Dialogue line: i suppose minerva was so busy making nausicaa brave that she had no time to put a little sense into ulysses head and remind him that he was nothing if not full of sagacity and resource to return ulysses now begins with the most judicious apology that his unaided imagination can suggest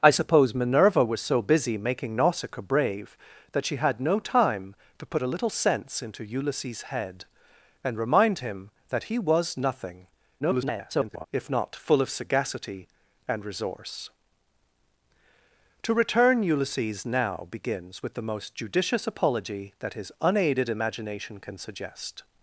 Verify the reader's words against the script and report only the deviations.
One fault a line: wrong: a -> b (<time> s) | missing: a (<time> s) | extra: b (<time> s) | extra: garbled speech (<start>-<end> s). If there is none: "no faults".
extra: garbled speech (10.4-11.3 s)